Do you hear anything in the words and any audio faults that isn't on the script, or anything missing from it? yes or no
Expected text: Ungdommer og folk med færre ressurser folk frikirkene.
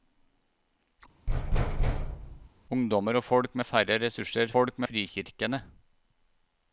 yes